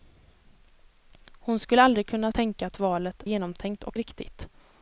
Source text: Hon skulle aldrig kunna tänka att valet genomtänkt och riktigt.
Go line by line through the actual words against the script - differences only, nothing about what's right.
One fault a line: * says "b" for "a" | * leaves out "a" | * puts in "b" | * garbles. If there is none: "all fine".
all fine